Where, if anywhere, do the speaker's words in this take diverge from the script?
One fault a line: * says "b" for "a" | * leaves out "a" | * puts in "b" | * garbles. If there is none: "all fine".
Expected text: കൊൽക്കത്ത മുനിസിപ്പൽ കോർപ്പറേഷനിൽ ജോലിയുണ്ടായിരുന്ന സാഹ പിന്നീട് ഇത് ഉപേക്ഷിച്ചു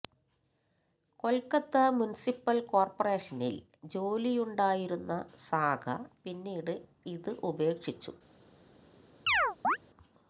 all fine